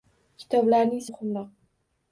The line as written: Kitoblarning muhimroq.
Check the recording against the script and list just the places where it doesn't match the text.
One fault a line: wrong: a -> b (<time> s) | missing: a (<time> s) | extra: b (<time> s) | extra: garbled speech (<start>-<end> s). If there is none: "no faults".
no faults